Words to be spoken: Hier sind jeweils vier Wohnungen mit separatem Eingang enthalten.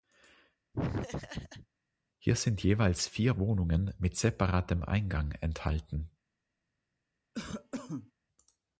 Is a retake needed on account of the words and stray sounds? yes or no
yes